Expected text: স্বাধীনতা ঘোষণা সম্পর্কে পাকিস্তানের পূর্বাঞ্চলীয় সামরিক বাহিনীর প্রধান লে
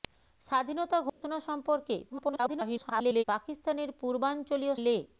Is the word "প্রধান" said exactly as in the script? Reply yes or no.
no